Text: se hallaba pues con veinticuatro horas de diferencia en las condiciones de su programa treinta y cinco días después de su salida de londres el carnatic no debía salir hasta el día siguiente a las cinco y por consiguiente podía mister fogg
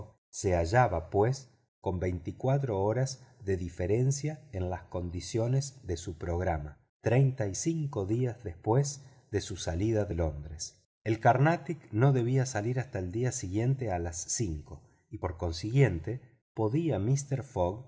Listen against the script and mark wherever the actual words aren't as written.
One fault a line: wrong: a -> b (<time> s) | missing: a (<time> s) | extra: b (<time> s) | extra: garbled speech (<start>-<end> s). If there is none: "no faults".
no faults